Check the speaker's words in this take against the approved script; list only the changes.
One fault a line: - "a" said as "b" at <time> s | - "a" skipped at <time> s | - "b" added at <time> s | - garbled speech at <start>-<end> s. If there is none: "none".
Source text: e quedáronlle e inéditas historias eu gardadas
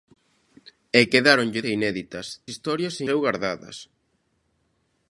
none